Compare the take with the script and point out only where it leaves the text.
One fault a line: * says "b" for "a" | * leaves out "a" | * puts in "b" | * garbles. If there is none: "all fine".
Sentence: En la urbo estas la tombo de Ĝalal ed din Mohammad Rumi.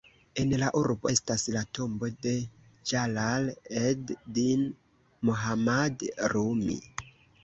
all fine